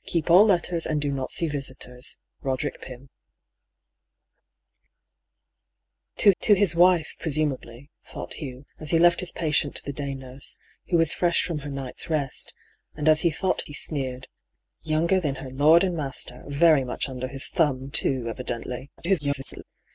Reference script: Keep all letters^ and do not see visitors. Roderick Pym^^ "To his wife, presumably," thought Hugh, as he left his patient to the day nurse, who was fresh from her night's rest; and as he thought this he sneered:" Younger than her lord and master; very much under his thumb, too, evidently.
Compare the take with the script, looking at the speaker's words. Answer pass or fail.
fail